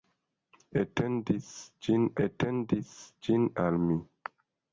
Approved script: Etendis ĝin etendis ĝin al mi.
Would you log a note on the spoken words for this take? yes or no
no